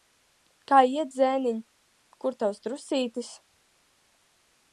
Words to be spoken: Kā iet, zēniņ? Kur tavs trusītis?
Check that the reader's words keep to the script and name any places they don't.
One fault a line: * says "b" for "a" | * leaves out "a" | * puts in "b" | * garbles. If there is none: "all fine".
all fine